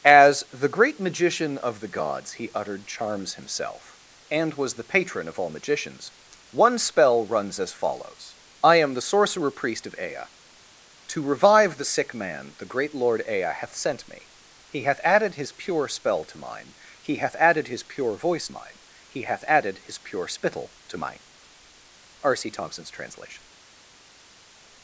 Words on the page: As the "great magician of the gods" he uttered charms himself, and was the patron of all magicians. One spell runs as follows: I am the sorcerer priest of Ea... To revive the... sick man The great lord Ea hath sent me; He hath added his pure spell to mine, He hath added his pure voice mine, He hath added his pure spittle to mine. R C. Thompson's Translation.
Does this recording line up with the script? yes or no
yes